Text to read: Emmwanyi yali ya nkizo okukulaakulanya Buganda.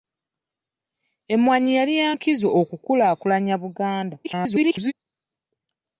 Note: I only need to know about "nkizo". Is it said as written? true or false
true